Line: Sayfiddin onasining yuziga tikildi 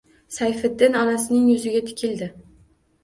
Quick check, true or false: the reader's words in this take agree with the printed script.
true